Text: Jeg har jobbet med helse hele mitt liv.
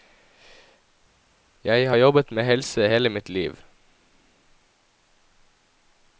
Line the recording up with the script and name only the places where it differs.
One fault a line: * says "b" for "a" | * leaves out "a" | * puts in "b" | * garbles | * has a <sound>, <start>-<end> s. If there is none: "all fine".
all fine